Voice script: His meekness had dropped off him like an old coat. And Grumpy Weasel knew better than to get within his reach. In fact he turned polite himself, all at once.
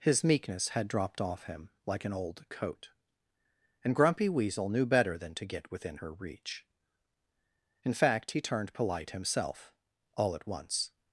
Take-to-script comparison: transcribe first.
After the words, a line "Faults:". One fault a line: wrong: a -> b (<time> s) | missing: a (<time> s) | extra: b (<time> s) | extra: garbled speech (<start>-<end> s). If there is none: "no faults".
His meekness had dropped off him like an old coat. And Grumpy Weasel knew better than to get within her reach. In fact he turned polite himself, all at once.
Faults:
wrong: his -> her (5.9 s)